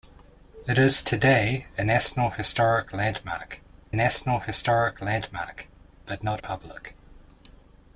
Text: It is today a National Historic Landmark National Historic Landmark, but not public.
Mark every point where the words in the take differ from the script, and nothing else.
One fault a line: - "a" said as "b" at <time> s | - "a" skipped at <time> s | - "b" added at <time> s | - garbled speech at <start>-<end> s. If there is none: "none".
none